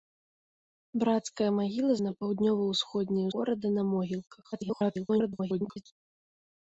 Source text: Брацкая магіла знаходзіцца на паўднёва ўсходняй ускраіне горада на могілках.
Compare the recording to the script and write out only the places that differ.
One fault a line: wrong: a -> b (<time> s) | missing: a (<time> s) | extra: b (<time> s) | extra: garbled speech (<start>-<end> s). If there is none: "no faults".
missing: знаходзіцца (1.9 s)
missing: ускраіне (3.3 s)
extra: garbled speech (4.5-5.8 s)